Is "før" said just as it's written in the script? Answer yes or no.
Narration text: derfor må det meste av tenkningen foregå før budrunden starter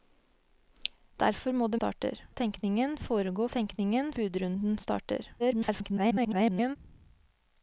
no